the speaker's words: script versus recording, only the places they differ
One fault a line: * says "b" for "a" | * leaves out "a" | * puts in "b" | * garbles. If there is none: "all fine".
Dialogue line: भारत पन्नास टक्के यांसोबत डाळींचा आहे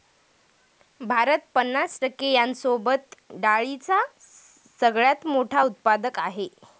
* puts in "सगळ्यात मोठा उत्पादक"